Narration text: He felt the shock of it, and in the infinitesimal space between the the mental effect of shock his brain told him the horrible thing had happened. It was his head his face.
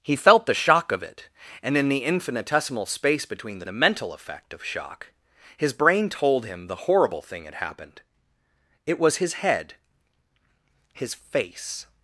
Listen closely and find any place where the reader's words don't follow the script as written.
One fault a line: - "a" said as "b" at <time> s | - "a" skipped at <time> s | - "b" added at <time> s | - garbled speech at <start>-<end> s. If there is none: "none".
none